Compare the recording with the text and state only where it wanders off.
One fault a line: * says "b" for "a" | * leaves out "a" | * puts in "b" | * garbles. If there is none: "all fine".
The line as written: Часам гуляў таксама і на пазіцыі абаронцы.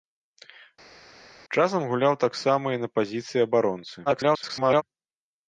* garbles